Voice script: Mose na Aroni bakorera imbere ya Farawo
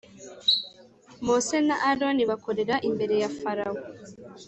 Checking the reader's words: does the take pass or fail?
pass